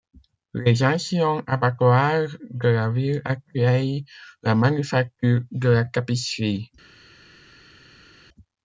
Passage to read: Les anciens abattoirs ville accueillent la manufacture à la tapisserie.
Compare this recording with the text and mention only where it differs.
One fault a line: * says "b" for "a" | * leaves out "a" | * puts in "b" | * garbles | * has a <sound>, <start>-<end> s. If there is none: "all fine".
* puts in "de la"
* says "de" for "à"